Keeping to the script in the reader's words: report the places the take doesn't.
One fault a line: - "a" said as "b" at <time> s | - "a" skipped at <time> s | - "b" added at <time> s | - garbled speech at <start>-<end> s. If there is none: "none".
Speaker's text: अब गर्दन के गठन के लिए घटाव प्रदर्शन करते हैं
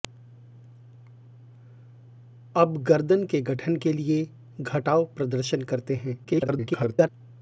- garbled speech at 6.2-7.1 s